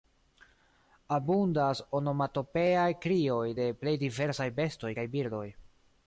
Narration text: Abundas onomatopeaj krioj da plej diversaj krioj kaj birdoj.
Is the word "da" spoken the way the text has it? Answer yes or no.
no